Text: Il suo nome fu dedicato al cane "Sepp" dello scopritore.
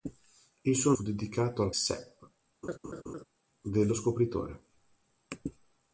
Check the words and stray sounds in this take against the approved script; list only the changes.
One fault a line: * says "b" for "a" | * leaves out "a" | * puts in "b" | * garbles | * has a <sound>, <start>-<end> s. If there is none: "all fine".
* leaves out "nome"
* leaves out "cane"
* has a laugh, 2.6-3.2 s